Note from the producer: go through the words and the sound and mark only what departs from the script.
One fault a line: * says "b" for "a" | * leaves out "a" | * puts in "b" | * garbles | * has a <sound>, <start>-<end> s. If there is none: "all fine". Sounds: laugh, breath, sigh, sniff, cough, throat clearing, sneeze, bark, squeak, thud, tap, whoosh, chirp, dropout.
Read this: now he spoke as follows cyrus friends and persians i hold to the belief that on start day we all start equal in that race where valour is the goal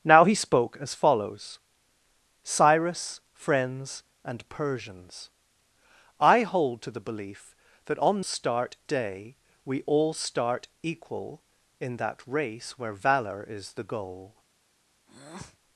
* has a breath, 15.1-15.6 s